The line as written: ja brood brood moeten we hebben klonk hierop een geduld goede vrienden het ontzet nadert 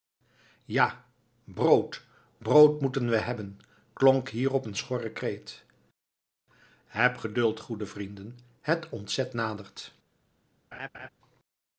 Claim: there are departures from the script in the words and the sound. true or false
true